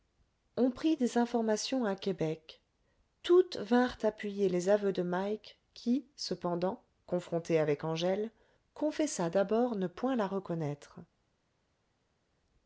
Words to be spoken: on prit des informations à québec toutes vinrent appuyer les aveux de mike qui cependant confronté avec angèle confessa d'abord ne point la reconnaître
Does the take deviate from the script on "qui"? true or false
false